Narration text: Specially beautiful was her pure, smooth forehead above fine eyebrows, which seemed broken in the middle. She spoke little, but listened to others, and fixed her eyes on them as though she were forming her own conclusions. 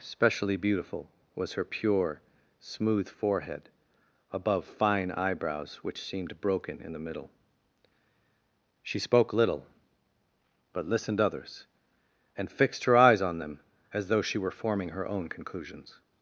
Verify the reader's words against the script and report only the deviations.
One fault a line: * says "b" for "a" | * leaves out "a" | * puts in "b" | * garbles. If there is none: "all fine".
* leaves out "to"